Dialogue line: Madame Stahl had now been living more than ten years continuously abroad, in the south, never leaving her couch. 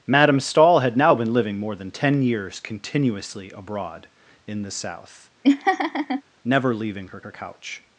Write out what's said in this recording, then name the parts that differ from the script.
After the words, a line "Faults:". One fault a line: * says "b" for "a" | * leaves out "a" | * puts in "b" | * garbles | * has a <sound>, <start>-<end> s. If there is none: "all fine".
Madame Stahl had now been living more than ten years continuously abroad, in the south, never leaving her her couch.
Faults:
* has a laugh, 5.4-6.2 s
* puts in "her"